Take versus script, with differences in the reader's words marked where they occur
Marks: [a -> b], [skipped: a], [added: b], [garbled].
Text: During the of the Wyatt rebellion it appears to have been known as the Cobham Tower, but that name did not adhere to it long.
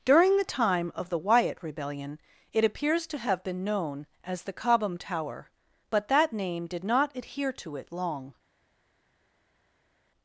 During the [added: time] of the Wyatt rebellion it appears to have been known as the Cobham Tower, but that name did not adhere to it long.